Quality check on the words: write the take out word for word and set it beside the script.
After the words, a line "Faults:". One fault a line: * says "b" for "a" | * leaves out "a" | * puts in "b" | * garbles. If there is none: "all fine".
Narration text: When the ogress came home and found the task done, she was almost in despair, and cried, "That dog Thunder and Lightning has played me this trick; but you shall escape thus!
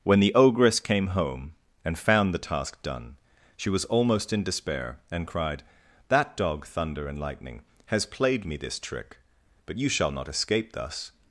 When the ogress came home and found the task done, she was almost in despair, and cried, "That dog Thunder and Lightning has played me this trick; but you shall not escape thus!
Faults:
* puts in "not"